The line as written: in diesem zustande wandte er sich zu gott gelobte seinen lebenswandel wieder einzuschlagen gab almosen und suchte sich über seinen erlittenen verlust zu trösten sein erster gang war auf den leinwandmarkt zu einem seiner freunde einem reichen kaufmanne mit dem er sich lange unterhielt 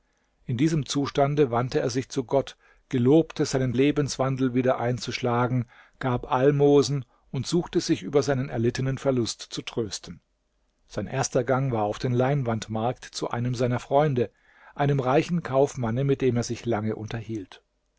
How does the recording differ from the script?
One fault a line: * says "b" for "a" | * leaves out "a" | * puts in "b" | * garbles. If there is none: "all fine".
all fine